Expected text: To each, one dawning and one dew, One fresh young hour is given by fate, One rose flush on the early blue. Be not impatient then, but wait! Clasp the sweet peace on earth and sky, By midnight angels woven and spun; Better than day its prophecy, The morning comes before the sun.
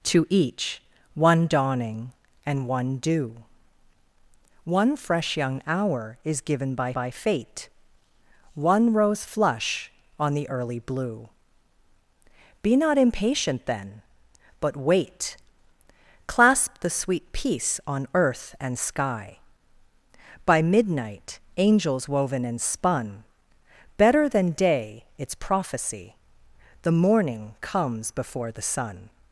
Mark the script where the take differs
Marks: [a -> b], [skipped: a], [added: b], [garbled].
To each, one dawning and one dew, One fresh young hour is given by [added: by] fate, One rose flush on the early blue. Be not impatient then, but wait! Clasp the sweet peace on earth and sky, By midnight angels woven and spun; Better than day its prophecy, The morning comes before the sun.